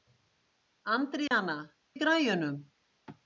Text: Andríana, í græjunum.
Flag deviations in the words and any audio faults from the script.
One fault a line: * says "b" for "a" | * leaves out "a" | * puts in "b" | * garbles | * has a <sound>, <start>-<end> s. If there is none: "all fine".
* has a dropout, 1.3-1.3 s